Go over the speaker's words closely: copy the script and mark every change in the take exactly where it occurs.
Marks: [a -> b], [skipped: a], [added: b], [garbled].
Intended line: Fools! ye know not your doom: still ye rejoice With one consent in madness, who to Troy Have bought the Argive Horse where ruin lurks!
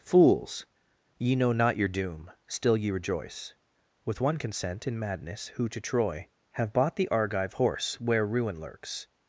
Fools! ye know not your doom: still ye rejoice With one consent in madness, who to Troy Have bought the Argive Horse where ruin lurks!